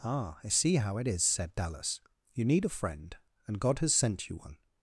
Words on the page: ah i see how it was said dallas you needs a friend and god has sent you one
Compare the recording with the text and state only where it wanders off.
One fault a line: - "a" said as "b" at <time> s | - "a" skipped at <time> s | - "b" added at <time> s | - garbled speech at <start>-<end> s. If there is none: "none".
- "was" said as "is" at 1.1 s
- "needs" said as "need" at 2.5 s